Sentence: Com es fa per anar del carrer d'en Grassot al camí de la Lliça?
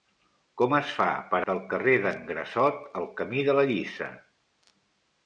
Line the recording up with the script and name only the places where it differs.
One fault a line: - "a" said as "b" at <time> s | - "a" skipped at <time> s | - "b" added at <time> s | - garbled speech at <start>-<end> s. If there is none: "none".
- "anar" skipped at 1.4 s